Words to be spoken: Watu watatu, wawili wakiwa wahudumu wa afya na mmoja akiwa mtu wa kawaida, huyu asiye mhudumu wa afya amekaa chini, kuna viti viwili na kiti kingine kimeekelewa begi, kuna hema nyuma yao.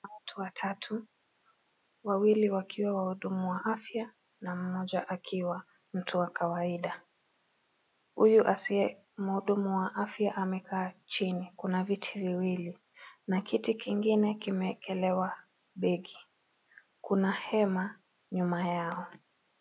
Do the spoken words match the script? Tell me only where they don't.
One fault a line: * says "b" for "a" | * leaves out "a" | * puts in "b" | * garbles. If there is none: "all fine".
all fine